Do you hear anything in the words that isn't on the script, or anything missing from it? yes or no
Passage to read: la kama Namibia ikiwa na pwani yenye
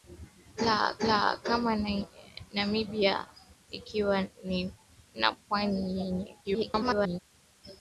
yes